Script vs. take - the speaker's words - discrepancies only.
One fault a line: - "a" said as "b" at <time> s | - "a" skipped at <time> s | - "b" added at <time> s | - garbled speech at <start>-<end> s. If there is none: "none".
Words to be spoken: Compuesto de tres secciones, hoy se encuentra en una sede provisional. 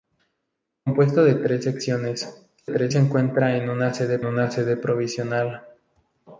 - "hoy" said as "tres" at 2.7 s
- "una sede" added at 4.2 s